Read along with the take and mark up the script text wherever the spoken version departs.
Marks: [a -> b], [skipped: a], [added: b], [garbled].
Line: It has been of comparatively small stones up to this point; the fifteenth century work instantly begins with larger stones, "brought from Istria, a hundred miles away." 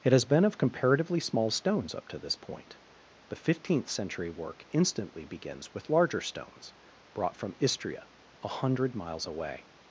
It has been of comparatively small stones up to this point; the fifteenth century work instantly begins with larger stones, "brought from Istria, a hundred miles away."